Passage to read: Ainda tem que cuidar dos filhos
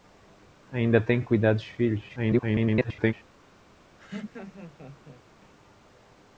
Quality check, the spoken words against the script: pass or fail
fail